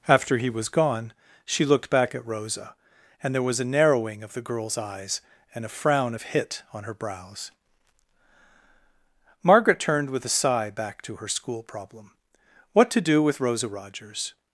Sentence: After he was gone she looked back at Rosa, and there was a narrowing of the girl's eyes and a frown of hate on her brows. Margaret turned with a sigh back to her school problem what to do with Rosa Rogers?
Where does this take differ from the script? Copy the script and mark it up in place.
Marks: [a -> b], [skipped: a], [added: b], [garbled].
After he was gone she looked back at Rosa, and there was a narrowing of the girl's eyes and a frown of [hate -> hit] on her brows. Margaret turned with a sigh back to her school problem what to do with Rosa Rogers?